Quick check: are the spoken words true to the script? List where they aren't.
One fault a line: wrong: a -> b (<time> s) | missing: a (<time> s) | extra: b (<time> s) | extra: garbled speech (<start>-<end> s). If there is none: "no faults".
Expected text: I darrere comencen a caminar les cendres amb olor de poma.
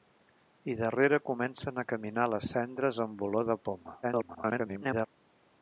extra: garbled speech (4.0-5.1 s)